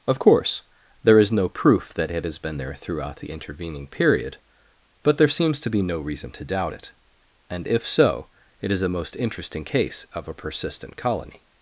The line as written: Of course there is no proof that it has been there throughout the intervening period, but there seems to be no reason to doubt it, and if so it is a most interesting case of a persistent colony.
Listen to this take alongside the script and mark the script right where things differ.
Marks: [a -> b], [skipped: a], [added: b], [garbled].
Of course there is no proof that it has been there throughout the intervening period, but there seems to be no reason to doubt it, and if so it is a most interesting case of a persistent colony.